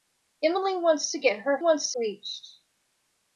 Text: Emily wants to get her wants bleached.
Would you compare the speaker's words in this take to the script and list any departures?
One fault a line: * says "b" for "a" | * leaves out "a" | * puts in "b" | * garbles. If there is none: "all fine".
all fine